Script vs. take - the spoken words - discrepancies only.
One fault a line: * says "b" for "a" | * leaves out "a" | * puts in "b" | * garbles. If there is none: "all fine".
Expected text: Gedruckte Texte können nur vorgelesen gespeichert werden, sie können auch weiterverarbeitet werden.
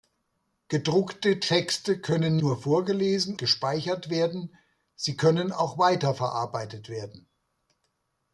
all fine